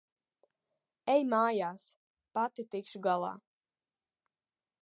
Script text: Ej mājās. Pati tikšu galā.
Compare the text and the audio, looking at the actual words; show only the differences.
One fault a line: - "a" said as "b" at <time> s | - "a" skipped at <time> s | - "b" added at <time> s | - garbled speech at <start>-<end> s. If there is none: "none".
none